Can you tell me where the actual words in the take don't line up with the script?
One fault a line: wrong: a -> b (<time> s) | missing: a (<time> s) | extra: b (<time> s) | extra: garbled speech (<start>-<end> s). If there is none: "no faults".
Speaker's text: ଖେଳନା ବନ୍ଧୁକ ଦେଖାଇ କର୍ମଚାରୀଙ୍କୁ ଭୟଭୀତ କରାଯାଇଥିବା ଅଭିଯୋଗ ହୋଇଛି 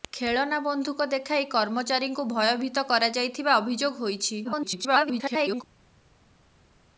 extra: garbled speech (4.4-5.6 s)